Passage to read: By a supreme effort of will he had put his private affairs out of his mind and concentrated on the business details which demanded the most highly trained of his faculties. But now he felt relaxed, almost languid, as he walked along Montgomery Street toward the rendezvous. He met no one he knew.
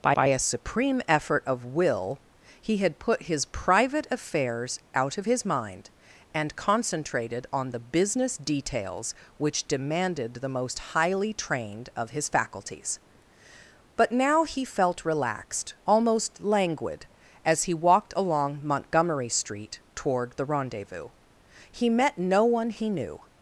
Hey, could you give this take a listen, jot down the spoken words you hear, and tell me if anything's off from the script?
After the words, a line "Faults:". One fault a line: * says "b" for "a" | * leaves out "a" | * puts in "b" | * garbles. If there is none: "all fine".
By by a supreme effort of will he had put his private affairs out of his mind and concentrated on the business details which demanded the most highly trained of his faculties. But now he felt relaxed, almost languid, as he walked along Montgomery Street toward the rendezvous. He met no one he knew.
Faults:
* puts in "by"